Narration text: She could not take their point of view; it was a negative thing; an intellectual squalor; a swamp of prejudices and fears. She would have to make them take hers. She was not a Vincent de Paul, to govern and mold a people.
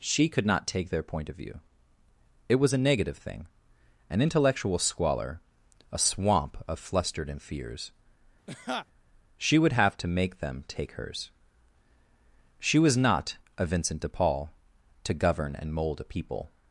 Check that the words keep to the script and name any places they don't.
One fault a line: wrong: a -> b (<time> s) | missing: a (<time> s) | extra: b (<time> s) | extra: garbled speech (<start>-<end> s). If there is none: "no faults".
wrong: prejudices -> flustered (6.8 s)